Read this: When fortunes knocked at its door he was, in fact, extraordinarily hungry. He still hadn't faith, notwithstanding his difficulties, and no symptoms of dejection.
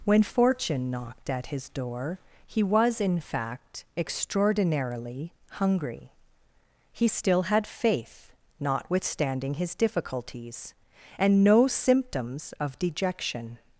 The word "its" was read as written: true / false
false